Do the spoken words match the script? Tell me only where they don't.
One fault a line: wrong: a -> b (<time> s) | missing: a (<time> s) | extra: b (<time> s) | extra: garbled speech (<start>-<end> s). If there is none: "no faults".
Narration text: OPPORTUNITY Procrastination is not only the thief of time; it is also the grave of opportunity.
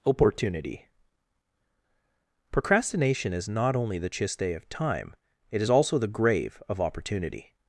wrong: thief -> chiste (4.1 s)